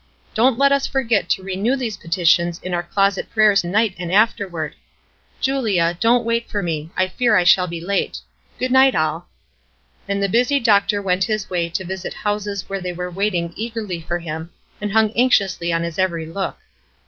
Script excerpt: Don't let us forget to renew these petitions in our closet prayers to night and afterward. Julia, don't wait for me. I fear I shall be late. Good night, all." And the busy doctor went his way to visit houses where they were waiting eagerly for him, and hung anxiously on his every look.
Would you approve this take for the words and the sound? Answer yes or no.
no